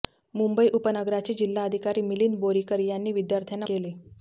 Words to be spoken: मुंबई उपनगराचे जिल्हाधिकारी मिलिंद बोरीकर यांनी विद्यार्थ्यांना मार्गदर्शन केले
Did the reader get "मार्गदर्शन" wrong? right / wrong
wrong